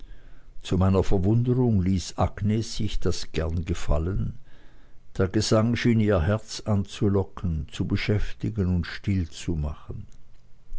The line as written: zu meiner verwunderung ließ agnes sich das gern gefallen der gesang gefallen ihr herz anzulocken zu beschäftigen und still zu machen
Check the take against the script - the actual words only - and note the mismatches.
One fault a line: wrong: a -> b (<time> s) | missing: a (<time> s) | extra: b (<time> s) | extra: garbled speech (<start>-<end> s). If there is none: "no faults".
wrong: gefallen -> schien (5.8 s)